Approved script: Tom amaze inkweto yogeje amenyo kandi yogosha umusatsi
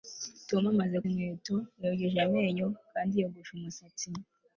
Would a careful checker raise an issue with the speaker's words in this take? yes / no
no